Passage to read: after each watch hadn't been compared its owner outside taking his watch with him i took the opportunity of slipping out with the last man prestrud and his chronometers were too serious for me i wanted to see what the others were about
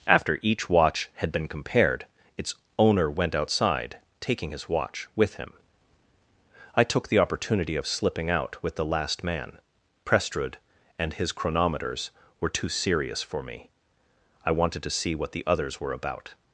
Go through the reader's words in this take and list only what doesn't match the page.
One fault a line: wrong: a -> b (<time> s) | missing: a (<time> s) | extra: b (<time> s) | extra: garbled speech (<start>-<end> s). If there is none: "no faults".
wrong: hadn't -> had (1.1 s)
extra: went (3.1 s)